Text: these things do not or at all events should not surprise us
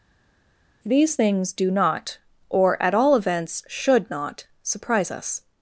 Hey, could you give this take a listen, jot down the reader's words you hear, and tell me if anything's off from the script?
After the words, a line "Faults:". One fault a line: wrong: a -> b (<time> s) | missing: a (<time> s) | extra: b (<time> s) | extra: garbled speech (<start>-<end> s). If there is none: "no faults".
these things do not or at all events should not surprise us
Faults:
no faults